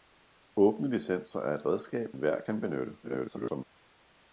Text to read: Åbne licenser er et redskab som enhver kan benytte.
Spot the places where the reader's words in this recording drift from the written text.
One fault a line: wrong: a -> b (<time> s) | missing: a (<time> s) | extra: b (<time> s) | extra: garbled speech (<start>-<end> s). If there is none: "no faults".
missing: som (2.2 s)
extra: garbled speech (3.0-3.6 s)